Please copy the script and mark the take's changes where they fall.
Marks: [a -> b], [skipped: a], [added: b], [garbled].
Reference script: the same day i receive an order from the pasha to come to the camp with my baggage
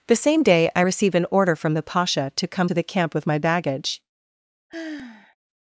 the same day i receive an order from the pasha to come to the camp with my baggage